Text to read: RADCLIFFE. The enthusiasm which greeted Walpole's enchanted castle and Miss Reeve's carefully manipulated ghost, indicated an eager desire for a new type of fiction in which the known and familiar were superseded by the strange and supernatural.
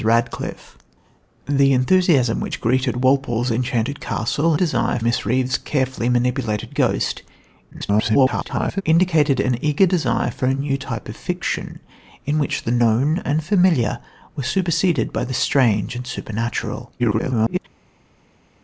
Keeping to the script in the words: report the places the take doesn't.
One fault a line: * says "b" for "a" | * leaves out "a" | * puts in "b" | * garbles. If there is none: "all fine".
* says "desire" for "and"
* garbles
* garbles